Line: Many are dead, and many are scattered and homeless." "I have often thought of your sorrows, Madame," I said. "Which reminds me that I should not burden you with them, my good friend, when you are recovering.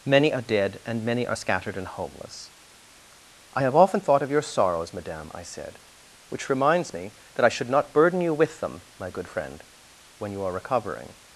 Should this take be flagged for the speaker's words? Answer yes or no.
no